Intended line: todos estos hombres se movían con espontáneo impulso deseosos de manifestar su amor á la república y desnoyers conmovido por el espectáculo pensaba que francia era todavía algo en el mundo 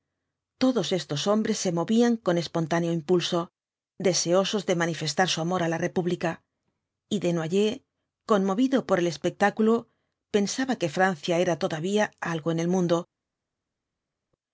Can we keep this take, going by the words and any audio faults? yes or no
yes